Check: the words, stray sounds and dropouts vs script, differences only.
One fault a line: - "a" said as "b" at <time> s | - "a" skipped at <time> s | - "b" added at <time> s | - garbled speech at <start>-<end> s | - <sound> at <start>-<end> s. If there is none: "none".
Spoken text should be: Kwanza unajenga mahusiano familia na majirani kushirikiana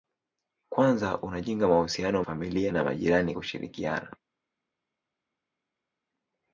none